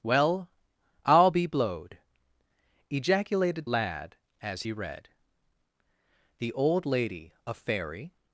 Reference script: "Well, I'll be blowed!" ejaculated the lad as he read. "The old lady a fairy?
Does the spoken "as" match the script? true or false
true